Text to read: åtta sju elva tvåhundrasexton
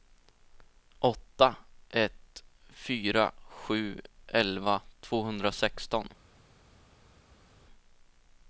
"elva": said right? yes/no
yes